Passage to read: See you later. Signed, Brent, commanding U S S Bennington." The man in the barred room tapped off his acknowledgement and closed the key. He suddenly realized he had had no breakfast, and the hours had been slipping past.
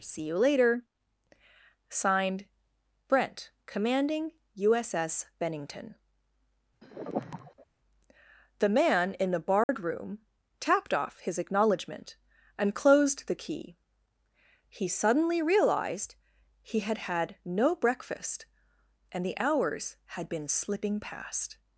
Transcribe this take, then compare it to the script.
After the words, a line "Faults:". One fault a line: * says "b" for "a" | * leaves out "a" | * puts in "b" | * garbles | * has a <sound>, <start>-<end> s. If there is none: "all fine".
See you later. Signed, Brent, commanding U S S Bennington." The man in the barred room tapped off his acknowledgement and closed the key. He suddenly realized he had had no breakfast, and the hours had been slipping past.
Faults:
* has a sigh, 6.8-7.7 s
* has a dropout, 9.6-9.7 s